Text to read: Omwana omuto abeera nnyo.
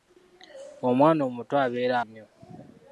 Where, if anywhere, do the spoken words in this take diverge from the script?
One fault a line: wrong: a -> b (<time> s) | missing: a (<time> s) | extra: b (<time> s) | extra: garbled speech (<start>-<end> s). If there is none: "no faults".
no faults